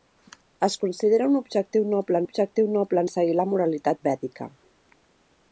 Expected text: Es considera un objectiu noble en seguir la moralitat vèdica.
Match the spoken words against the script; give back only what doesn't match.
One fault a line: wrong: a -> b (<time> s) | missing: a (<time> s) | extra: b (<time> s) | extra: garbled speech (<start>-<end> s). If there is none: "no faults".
extra: objectiu noble (2.2 s)